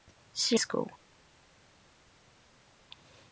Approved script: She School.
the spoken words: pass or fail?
pass